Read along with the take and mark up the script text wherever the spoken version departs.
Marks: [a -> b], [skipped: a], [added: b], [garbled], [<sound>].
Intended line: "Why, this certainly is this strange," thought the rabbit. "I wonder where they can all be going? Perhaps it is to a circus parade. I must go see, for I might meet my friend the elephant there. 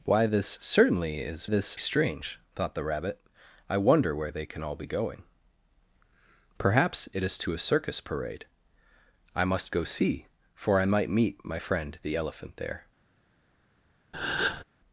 "Why, this certainly is this strange," thought the rabbit. "I wonder where they can all be going? Perhaps it is to a circus parade. I must go see, for I might meet my friend the elephant there. [breath]